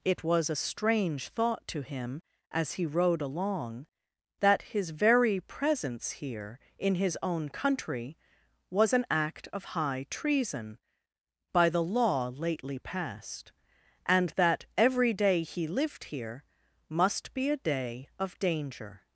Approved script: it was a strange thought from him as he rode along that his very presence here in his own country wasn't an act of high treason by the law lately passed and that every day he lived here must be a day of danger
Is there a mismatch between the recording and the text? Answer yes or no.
yes